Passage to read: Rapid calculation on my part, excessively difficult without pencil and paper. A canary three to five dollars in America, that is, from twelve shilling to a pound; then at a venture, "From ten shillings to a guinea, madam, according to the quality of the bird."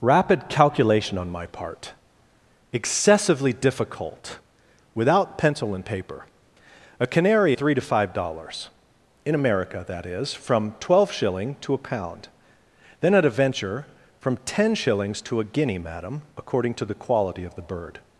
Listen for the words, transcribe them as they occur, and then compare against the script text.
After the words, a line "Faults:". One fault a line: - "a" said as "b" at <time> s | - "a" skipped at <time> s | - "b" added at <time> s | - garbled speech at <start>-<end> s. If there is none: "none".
Rapid calculation on my part, excessively difficult without pencil and paper. A canary three to five dollars in America, that is, from twelve shilling to a pound; then at a venture, "From ten shillings to a guinea, madam, according to the quality of the bird."
Faults:
none